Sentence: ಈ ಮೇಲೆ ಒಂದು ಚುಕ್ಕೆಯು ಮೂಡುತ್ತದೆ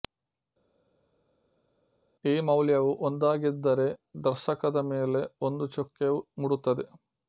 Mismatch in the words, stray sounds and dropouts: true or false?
true